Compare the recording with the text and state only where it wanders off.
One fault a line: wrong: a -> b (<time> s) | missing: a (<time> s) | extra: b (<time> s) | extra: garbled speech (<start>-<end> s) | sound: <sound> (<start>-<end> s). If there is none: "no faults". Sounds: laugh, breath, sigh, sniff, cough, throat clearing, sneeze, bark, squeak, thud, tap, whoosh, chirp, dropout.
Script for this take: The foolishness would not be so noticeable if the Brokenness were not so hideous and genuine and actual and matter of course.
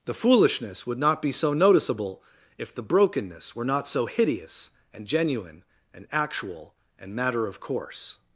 no faults